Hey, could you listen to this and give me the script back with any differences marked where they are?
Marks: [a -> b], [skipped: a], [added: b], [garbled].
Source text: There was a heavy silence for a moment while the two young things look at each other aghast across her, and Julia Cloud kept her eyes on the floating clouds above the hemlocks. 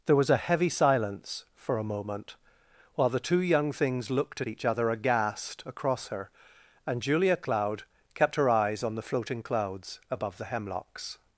There was a heavy silence for a moment while the two young things [look -> looked] at each other aghast across her, and Julia Cloud kept her eyes on the floating clouds above the hemlocks.